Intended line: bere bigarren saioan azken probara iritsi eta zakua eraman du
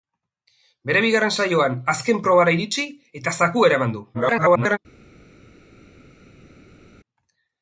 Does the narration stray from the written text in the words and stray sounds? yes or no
yes